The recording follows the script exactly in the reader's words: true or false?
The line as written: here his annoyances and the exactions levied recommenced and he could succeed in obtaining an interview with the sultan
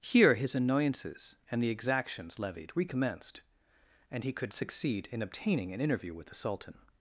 true